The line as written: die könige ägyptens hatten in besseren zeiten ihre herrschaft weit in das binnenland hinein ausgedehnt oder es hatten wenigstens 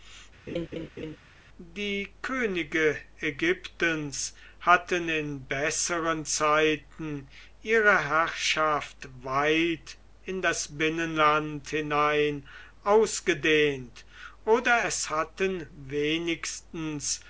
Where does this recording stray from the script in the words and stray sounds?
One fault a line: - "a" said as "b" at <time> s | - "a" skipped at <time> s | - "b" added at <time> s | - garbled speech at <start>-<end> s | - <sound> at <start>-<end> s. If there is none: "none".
- laugh at 0.5-1.2 s